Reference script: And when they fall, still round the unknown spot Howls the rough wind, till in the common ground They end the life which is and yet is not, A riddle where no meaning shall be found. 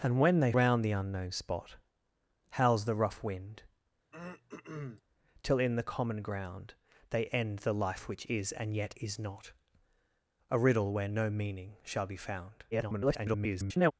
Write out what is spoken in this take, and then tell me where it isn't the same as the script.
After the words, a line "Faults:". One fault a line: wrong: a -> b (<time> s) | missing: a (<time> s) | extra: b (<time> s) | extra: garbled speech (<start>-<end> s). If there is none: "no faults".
And when they round the unknown spot Howls the rough wind, till in the common ground They end the life which is and yet is not, A riddle where no meaning shall be found. [garbled]
Faults:
missing: fall still (0.5 s)
extra: garbled speech (12.7-13.9 s)